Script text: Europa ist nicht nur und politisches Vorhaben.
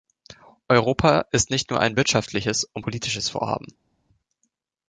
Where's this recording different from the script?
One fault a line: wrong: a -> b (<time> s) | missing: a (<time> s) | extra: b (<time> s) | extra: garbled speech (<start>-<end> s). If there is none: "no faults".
extra: ein wirtschaftliches (1.8 s)